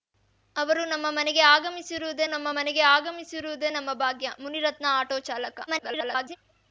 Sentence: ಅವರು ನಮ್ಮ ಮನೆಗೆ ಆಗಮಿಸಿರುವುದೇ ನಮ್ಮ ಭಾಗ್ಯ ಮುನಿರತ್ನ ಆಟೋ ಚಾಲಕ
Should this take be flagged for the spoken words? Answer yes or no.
yes